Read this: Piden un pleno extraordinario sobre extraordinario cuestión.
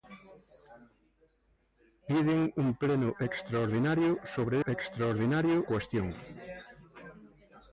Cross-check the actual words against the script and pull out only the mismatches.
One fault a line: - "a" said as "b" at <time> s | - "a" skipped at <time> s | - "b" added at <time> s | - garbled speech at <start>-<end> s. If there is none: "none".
none